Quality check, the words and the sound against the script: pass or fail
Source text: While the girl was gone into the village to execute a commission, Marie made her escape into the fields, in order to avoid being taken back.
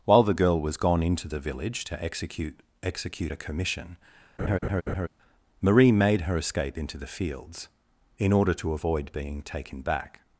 fail